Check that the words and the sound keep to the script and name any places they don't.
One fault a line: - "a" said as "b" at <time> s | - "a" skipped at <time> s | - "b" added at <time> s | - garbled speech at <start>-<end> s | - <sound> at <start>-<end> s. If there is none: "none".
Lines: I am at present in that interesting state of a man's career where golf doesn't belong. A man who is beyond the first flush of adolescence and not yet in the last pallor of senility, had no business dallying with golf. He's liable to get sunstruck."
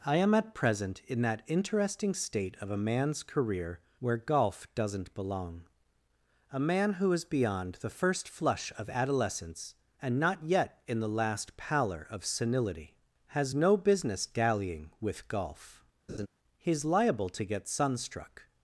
- "had" said as "has" at 13.3 s
- laugh at 16.1-16.3 s